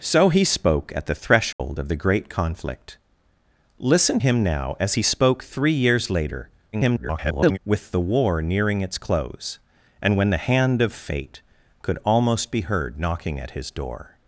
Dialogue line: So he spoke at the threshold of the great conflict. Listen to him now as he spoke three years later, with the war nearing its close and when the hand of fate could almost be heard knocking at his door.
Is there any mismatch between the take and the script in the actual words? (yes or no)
yes